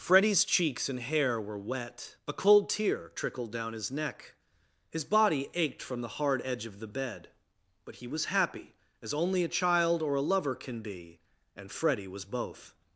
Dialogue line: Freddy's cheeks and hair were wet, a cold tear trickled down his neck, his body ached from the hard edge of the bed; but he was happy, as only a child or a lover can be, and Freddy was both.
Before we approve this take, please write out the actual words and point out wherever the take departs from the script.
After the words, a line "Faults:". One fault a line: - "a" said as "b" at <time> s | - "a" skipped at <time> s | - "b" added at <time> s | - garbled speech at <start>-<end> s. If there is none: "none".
Freddy's cheeks and hair were wet, a cold tear trickled down his neck, his body ached from the hard edge of the bed; but he was happy, as only a child or a lover can be, and Freddy was both.
Faults:
none